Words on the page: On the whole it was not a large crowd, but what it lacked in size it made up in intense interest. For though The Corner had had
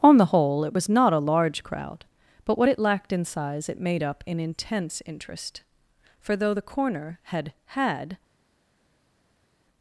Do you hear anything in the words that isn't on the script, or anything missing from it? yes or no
no